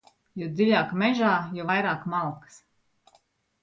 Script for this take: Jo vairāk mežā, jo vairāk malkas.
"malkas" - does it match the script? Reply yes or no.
yes